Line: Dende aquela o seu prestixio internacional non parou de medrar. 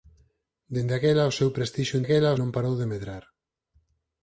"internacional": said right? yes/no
no